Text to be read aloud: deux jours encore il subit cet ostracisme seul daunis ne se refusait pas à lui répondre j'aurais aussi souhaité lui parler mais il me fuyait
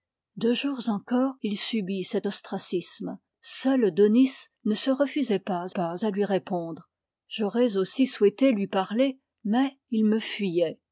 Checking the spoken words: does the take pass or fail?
fail